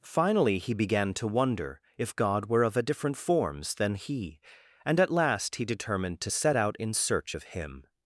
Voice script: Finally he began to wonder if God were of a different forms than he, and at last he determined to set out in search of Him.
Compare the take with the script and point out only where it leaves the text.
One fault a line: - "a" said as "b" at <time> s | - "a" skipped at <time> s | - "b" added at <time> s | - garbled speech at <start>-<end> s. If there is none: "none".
none